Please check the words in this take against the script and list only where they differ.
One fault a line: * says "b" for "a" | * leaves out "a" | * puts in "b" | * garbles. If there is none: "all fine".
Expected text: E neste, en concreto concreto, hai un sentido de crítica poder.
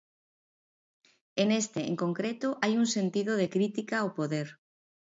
* leaves out "concreto"
* puts in "ao"